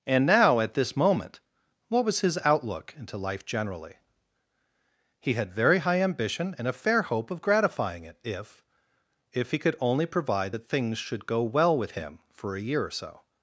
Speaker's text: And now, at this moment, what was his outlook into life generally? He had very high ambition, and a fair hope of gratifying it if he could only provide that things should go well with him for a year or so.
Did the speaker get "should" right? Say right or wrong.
right